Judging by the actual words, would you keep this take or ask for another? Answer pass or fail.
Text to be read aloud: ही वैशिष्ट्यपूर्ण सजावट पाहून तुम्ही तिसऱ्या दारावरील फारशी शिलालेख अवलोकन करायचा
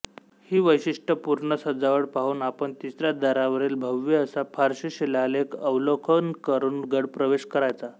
fail